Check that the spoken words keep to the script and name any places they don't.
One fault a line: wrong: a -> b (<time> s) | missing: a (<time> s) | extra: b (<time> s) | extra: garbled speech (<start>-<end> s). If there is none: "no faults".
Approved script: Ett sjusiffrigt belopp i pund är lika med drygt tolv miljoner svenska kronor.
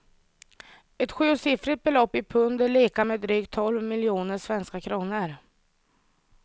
no faults